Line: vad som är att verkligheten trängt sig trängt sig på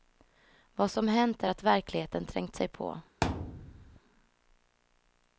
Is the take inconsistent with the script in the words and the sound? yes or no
yes